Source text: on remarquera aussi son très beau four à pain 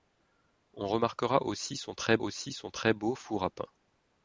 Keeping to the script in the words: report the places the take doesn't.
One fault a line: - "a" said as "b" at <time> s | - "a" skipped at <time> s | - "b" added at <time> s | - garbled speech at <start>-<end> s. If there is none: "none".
- "aussi son très" added at 2.2 s